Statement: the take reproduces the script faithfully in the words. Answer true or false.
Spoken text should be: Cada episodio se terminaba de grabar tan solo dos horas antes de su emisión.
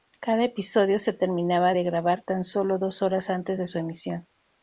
true